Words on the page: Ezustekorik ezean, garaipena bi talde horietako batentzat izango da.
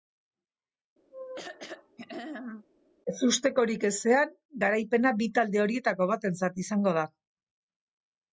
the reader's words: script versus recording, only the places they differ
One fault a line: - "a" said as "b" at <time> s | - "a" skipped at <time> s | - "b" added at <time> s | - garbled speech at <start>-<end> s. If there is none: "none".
none